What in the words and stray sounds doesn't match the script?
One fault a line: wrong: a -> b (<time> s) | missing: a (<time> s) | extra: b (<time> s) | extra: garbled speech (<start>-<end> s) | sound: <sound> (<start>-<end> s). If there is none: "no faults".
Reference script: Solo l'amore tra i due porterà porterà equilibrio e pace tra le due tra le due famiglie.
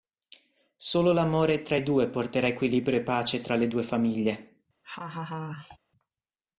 missing: porterà (2.5 s)
missing: tra le due (3.8 s)
sound: laugh (4.8-5.8 s)